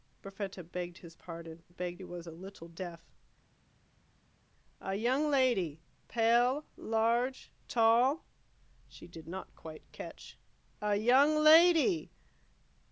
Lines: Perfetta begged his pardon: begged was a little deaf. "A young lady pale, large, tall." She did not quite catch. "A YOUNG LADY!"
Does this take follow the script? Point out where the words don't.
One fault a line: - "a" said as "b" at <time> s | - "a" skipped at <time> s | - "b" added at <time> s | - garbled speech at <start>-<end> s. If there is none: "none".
none